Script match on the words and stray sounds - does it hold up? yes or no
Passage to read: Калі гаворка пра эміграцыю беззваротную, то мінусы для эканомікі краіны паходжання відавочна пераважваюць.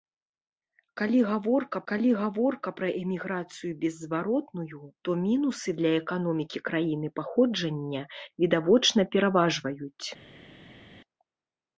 no